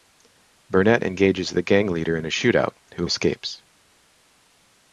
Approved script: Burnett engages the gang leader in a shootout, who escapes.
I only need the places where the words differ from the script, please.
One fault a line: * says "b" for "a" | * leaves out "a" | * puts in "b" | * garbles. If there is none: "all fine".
all fine